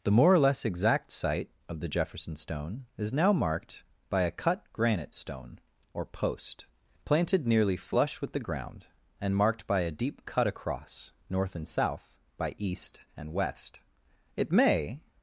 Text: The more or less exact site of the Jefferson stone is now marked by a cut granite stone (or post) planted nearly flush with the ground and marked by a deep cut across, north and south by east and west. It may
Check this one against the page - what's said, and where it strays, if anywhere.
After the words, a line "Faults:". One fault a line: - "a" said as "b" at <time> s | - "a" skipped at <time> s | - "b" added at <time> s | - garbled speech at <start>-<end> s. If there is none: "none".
The more or less exact site of the Jefferson stone is now marked by a cut granite stone (or post) planted nearly flush with the ground and marked by a deep cut across, north and south by east and west. It may
Faults:
none